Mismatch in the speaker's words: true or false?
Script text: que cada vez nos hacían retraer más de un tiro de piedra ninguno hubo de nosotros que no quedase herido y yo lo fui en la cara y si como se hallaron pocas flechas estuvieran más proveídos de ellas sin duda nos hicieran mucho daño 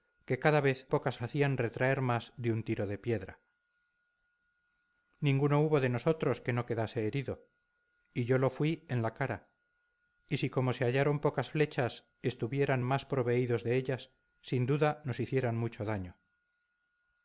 true